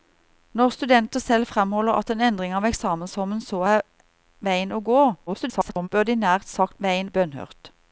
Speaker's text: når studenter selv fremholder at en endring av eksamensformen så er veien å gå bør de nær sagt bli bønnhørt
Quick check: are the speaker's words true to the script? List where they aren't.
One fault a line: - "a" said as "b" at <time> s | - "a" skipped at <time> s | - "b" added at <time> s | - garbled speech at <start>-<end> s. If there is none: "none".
- garbled speech at 5.3-5.9 s
- "bli" said as "veien" at 6.8 s